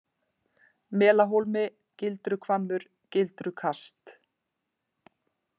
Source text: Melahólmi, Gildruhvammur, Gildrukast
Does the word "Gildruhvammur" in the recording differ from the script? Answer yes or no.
no